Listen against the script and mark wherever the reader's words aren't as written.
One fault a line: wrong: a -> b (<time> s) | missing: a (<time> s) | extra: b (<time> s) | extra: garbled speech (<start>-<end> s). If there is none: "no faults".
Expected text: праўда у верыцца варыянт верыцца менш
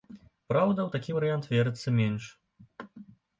wrong: верыцца -> такі (0.9 s)